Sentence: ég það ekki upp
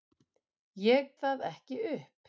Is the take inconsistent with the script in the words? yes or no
no